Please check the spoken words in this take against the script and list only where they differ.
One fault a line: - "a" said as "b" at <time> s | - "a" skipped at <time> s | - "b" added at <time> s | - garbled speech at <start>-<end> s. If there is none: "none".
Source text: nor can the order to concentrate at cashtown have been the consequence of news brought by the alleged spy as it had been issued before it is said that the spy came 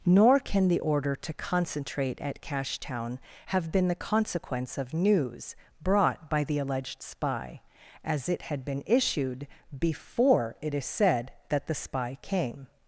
none